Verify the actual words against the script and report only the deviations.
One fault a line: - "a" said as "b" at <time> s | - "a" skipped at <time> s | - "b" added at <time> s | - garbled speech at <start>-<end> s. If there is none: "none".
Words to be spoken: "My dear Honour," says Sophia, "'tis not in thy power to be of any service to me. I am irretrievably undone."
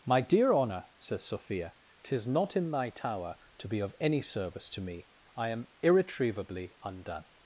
- "power" said as "tower" at 2.9 s